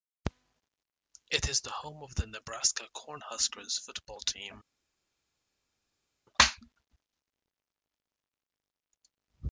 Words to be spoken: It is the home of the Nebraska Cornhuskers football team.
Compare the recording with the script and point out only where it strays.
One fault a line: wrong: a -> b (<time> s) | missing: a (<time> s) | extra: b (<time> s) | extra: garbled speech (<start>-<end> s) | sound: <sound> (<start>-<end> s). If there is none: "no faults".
no faults